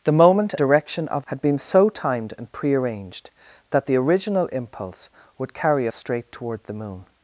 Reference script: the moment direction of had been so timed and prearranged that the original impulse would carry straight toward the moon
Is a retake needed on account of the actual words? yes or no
no